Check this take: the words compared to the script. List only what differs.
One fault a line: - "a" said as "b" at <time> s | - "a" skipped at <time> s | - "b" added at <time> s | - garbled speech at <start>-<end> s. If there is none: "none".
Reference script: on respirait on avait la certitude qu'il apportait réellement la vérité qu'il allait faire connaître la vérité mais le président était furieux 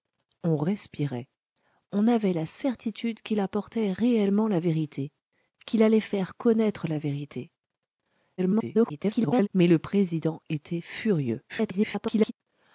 - garbled speech at 8.4-9.5 s
- garbled speech at 11.5-12.3 s